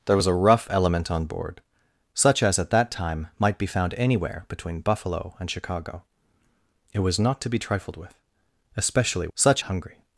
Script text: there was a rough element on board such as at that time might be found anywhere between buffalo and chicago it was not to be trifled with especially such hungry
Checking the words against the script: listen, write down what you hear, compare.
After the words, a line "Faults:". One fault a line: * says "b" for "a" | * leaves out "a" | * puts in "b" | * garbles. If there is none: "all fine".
there was a rough element on board such as at that time might be found anywhere between buffalo and chicago it was not to be trifled with especially such hungry
Faults:
all fine